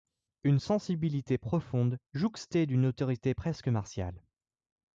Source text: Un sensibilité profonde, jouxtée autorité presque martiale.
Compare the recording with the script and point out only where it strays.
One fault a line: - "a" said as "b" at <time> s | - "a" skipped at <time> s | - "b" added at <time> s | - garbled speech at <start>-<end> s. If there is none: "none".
- "Un" said as "Une" at 0.4 s
- "d‘une" added at 2.6 s